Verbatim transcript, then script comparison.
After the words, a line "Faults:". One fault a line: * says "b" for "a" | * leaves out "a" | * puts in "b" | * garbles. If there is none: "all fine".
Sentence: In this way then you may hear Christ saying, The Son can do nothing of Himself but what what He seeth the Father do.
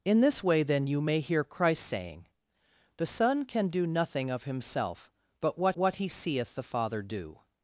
In this way then you may hear Christ saying, The Son can do nothing of Himself but what what He seeth the Father do.
Faults:
all fine